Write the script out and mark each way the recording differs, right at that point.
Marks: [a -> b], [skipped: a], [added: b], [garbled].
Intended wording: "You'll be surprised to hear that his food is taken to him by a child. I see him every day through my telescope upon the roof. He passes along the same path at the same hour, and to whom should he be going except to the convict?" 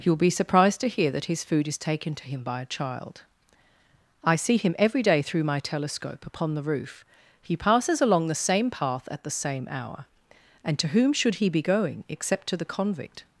"You'll be surprised to hear that his food is taken to him by a child. I see him every day through my telescope upon the roof. He passes along the same path at the same hour, and to whom should he be going except to the convict?"